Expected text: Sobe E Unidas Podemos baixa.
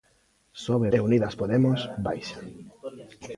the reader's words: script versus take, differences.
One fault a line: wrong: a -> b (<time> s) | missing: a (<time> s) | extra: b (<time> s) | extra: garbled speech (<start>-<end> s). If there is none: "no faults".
no faults